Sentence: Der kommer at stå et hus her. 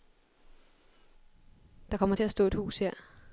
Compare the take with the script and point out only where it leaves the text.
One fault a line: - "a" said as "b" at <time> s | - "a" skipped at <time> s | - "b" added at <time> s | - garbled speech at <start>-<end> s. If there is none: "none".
- "til" added at 2.1 s